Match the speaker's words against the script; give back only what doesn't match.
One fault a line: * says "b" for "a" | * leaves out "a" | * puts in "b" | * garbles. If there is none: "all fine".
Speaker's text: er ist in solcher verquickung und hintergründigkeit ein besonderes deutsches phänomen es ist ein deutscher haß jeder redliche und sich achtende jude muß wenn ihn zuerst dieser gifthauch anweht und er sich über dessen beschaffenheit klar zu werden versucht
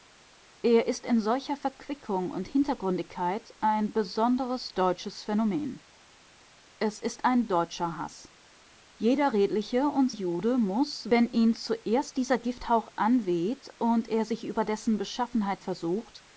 * leaves out "sich achtende"
* leaves out "klar zu werden"